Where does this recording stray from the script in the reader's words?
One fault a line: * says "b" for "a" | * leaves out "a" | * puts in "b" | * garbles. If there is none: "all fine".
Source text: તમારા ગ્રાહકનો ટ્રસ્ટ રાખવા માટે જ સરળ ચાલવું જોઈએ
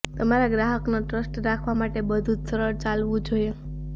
* puts in "બધું"